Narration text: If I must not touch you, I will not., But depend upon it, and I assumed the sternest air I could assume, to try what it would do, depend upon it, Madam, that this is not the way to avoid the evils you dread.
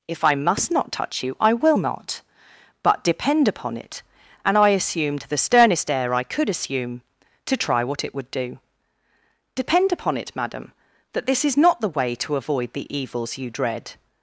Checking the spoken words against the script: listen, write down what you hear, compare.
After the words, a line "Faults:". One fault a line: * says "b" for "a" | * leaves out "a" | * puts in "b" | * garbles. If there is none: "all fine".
If I must not touch you, I will not., But depend upon it, and I assumed the sternest air I could assume, to try what it would do, depend upon it, Madam, that this is not the way to avoid the evils you dread.
Faults:
all fine